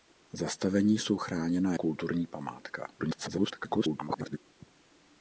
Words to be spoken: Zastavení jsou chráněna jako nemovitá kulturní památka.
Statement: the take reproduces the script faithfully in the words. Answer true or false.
false